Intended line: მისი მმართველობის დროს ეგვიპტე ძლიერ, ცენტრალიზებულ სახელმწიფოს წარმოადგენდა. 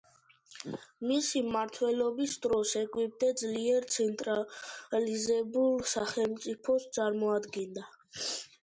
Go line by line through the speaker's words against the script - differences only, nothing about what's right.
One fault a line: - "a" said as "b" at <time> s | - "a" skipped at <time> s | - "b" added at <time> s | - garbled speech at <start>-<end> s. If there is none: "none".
none